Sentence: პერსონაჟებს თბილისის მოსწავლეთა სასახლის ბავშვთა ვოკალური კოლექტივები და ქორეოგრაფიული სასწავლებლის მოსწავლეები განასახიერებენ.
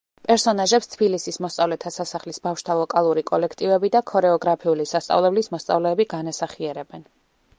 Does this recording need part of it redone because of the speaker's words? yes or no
no